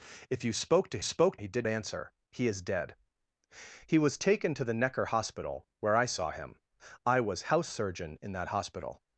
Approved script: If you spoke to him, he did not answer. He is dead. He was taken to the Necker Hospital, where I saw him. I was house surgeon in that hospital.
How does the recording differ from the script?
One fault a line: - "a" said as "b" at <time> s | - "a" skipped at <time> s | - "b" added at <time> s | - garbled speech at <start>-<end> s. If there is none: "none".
- "him" said as "spoke" at 1.0 s
- "not" skipped at 1.7 s